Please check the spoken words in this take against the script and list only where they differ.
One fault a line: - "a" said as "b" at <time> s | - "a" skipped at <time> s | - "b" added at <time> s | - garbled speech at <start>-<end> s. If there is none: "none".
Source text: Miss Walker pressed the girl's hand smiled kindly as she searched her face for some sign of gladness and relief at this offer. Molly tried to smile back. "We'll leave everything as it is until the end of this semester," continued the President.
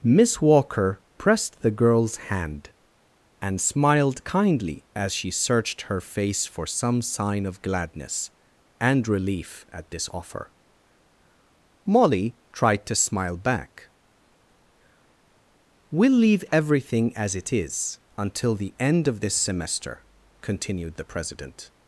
- "and" added at 3.4 s